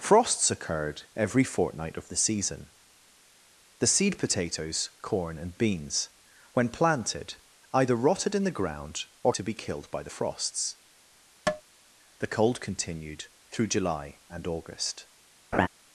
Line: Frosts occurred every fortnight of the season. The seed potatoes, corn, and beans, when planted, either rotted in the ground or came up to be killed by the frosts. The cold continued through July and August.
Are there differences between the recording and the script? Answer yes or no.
yes